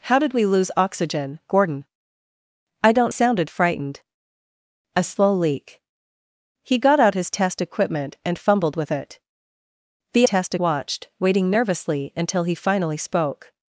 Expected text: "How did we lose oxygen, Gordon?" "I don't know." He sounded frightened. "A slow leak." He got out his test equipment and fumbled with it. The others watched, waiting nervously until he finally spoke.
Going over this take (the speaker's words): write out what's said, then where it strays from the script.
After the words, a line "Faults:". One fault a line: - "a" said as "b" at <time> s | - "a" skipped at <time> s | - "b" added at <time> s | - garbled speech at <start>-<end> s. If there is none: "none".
"How did we lose oxygen, Gordon?" "I don't sounded frightened. "A slow leak." He got out his test equipment and fumbled with it. The test watched, waiting nervously until he finally spoke.
Faults:
- "know He" skipped at 3.1 s
- "others" said as "test" at 10.2 s